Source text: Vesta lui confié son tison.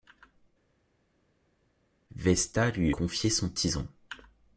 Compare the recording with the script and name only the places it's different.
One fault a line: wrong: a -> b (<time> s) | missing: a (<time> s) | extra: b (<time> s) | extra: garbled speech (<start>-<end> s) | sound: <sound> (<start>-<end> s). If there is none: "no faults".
no faults